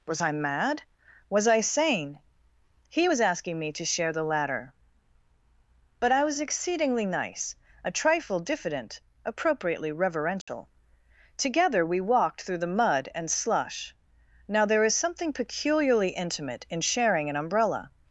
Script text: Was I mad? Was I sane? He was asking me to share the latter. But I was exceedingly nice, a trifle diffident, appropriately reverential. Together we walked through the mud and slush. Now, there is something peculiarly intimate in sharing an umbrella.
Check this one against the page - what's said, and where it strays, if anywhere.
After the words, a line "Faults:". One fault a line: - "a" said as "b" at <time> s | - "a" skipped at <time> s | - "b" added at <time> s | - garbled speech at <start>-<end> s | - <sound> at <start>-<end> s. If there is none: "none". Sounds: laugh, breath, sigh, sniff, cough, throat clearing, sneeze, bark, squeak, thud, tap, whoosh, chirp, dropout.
Was I mad? Was I sane? He was asking me to share the latter. But I was exceedingly nice, a trifle diffident, appropriately reverential. Together we walked through the mud and slush. Now, there is something peculiarly intimate in sharing an umbrella.
Faults:
- dropout at 10.4-10.5 s